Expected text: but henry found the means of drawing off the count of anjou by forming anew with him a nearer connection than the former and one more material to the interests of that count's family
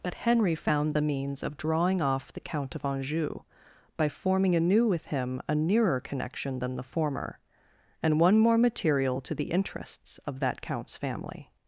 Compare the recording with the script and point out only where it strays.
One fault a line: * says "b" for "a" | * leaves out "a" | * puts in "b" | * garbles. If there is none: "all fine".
all fine